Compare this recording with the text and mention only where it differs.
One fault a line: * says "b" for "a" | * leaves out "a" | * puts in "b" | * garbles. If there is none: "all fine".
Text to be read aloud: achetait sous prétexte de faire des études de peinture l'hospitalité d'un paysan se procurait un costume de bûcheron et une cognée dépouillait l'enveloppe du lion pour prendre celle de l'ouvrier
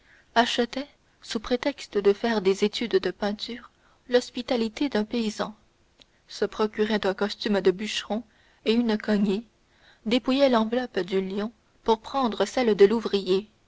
all fine